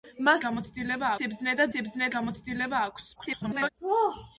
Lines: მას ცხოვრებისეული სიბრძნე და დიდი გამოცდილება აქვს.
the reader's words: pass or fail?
fail